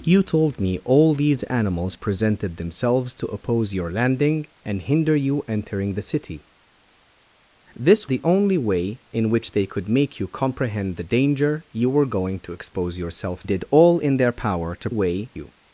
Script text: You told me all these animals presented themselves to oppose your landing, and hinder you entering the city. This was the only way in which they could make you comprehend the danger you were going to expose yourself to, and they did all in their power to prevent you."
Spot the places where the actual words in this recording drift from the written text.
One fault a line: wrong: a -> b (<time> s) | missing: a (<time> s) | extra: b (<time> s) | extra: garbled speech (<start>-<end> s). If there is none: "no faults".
missing: was (8.1 s)
missing: to and they (13.4 s)
wrong: prevent -> way (14.9 s)